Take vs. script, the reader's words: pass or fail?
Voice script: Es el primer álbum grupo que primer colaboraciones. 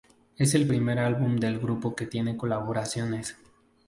fail